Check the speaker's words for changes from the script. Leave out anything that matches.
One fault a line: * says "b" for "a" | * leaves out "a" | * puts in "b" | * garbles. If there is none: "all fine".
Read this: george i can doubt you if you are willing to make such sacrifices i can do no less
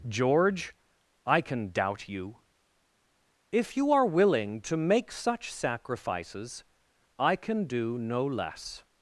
all fine